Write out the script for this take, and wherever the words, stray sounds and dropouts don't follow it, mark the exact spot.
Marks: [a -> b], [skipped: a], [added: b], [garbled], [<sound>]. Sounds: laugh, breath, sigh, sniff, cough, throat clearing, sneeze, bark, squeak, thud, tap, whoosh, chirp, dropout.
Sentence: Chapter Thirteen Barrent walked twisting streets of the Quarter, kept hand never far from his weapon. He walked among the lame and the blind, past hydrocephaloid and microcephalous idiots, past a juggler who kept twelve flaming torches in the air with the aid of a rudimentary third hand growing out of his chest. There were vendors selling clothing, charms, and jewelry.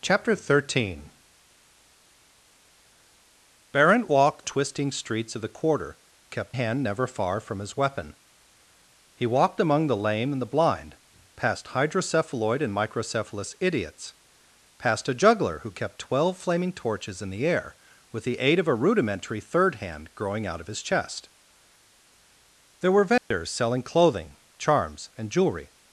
Chapter Thirteen Barrent walked twisting streets of the Quarter, kept hand never far from his weapon. He walked among the lame and the blind, past hydrocephaloid and microcephalous idiots, past a juggler who kept twelve flaming torches in the air with the aid of a rudimentary third hand growing out of his chest. There were vendors [dropout] selling clothing, charms, and jewelry.